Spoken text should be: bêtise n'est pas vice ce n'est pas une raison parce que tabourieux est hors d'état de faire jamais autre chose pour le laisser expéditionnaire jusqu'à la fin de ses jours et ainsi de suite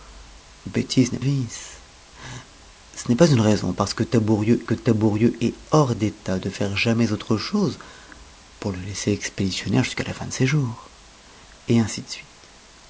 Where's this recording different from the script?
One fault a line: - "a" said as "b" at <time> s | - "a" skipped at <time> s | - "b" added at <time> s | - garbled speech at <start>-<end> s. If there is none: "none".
- "pas" skipped at 1.2 s
- "que tabourieux" added at 4.6 s